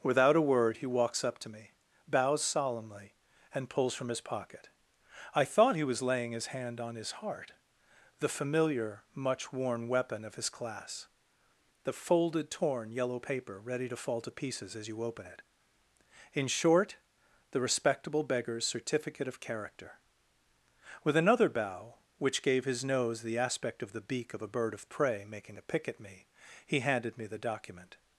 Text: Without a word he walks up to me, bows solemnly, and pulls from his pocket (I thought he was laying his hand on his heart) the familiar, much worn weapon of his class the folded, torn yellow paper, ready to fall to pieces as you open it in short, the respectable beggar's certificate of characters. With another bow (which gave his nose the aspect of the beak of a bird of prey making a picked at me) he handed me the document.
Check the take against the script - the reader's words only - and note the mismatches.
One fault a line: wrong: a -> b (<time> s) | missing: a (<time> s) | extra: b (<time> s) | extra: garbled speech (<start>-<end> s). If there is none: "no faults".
wrong: characters -> character (19.4 s)
wrong: picked -> pick (25.7 s)